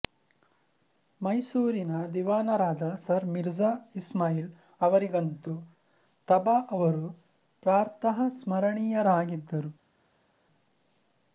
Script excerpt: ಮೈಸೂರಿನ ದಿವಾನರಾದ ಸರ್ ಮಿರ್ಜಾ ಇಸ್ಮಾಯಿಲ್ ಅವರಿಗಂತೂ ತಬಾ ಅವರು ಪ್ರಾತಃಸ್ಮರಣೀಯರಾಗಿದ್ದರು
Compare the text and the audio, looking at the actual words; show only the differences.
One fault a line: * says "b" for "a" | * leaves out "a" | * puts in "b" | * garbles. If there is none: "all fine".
all fine